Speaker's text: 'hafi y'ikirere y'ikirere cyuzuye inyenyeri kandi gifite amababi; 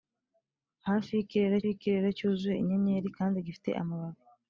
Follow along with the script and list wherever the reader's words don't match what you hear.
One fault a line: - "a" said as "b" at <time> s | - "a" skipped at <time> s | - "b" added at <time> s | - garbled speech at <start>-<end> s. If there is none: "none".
none